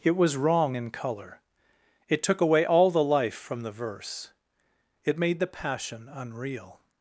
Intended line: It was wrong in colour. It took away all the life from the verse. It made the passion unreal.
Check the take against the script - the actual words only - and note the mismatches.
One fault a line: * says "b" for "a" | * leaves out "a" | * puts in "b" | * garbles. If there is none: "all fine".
all fine